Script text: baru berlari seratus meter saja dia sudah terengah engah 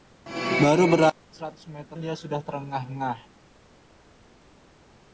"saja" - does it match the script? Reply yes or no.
no